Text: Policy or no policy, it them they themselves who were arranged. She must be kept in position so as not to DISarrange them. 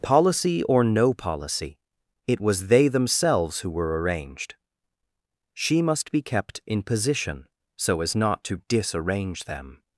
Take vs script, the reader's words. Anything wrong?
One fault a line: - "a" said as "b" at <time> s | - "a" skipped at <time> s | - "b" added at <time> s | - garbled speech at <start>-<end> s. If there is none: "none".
- "them" said as "was" at 2.4 s